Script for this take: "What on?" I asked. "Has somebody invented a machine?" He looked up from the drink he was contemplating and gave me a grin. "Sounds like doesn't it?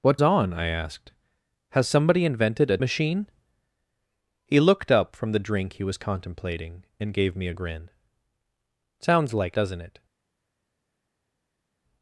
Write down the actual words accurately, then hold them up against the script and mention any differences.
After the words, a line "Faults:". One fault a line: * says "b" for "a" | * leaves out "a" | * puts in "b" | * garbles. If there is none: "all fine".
"What on?" I asked. "Has somebody invented a machine?" He looked up from the drink he was contemplating and gave me a grin. "Sounds like doesn't it?
Faults:
all fine